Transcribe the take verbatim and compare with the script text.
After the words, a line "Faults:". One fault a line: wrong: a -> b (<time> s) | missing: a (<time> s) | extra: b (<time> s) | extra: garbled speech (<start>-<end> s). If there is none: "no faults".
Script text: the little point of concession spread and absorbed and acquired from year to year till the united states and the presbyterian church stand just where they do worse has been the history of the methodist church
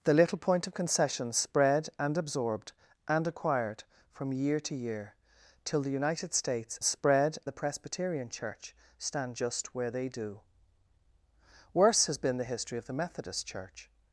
the little point of concession spread and absorbed and acquired from year to year till the united states spread the presbyterian church stand just where they do worse has been the history of the methodist church
Faults:
wrong: and -> spread (6.8 s)